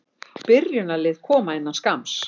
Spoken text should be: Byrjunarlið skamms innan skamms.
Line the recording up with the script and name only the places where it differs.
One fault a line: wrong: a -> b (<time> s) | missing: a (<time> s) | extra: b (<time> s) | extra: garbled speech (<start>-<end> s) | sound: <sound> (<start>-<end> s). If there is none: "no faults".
wrong: skamms -> koma (1.3 s)